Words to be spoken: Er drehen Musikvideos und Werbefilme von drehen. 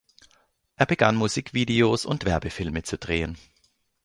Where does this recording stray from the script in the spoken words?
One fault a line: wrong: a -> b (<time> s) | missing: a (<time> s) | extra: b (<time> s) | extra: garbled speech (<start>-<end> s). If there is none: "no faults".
wrong: drehen -> begann (0.9 s)
wrong: von -> zu (2.8 s)